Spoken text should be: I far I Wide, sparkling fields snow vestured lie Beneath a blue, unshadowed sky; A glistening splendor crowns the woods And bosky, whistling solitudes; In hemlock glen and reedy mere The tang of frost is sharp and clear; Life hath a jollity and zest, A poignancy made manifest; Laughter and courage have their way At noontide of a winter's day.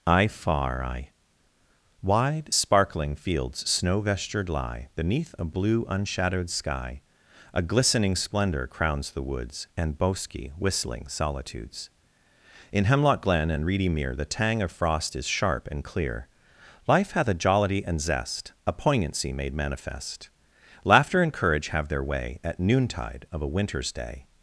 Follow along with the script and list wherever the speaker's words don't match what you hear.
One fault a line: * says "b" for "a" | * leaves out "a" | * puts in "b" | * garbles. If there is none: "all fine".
all fine